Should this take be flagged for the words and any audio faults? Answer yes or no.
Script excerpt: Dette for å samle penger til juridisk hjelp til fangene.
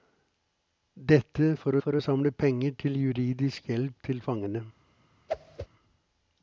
yes